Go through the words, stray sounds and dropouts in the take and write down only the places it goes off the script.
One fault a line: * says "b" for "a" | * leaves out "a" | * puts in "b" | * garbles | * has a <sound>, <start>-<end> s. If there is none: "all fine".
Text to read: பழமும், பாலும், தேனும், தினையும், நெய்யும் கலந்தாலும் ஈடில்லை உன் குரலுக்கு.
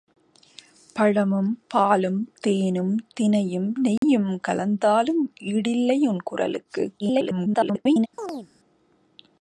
* has a dropout, 4.0-4.0 s
* garbles
* has a chirp, 8.2-8.5 s